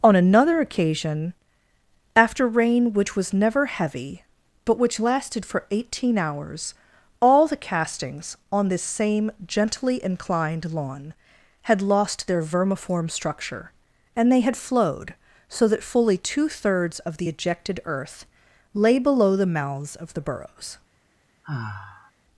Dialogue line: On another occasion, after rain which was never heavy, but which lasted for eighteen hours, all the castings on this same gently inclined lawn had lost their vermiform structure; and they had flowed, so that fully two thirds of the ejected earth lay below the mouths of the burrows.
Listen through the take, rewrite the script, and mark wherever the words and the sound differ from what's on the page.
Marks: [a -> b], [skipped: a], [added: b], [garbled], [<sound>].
On another occasion, after rain which was never heavy, but which lasted for eighteen hours, all the castings on this same gently inclined lawn had lost their vermiform structure; and they had flowed, so that fully two thirds of the ejected earth lay below the mouths of the burrows. [sigh]